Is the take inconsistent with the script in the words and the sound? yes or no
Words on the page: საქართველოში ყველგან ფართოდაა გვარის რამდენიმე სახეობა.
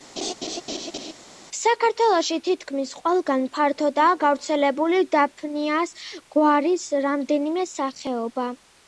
yes